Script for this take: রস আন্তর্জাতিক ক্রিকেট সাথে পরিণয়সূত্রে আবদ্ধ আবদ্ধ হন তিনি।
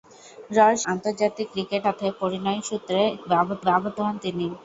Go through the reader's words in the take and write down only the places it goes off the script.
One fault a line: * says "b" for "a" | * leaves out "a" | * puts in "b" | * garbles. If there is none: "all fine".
all fine